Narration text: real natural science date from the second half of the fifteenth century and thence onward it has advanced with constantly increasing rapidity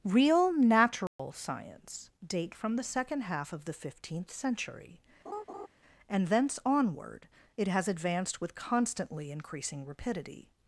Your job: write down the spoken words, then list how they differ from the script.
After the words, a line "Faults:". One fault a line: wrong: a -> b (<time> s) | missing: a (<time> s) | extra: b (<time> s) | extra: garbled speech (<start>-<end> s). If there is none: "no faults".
real natural science date from the second half of the fifteenth century and thence onward it has advanced with constantly increasing rapidity
Faults:
no faults